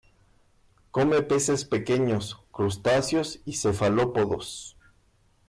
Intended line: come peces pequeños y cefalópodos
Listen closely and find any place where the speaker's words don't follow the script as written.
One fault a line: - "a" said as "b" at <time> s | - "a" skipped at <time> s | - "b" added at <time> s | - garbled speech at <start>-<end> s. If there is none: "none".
- "crustáceos" added at 2.5 s